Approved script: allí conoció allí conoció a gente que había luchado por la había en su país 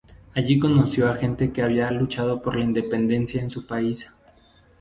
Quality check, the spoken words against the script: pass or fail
fail